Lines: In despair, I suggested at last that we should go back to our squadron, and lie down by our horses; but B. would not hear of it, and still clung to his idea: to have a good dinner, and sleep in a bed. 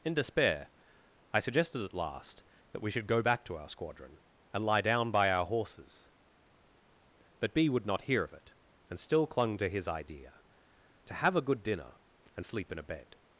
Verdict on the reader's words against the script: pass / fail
pass